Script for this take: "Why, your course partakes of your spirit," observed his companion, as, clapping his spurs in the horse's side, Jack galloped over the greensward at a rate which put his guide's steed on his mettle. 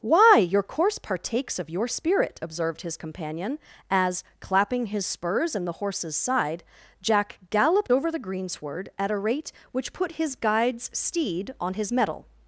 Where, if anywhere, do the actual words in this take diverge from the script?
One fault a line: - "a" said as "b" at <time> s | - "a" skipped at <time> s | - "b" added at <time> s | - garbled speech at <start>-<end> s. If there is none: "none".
none